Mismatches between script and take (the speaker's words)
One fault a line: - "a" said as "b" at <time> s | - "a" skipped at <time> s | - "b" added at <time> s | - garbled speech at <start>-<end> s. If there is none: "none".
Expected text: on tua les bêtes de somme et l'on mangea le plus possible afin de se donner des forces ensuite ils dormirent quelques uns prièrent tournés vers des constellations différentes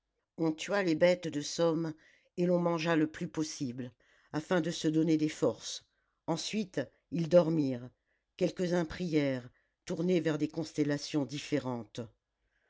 none